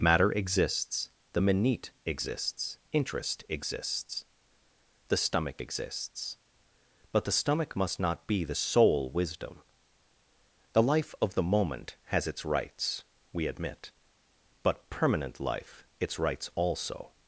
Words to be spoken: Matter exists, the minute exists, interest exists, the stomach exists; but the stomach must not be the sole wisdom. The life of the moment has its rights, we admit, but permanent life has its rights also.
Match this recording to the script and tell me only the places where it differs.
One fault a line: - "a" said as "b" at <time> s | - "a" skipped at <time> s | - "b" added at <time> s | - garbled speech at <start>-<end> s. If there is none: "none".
- "has" skipped at 15.9 s